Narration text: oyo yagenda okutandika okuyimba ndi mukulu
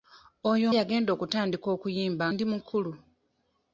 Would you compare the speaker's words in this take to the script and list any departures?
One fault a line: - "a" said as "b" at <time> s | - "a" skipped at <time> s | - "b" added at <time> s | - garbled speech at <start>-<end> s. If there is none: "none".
none